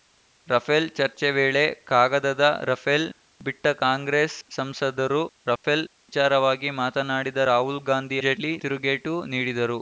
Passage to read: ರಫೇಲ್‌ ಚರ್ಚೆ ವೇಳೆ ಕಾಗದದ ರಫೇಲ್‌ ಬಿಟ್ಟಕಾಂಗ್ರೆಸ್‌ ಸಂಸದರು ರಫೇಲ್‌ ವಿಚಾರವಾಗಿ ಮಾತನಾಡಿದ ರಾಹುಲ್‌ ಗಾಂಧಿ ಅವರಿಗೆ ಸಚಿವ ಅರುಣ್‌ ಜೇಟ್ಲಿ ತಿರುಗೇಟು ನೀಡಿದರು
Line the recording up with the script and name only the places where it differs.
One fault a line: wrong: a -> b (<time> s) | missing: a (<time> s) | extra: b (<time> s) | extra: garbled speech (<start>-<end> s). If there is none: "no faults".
missing: ಅವರಿಗೆ ಸಚಿವ ಅರುಣ್ (8.2 s)